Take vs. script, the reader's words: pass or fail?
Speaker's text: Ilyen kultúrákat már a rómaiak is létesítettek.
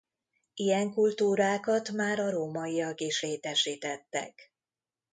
pass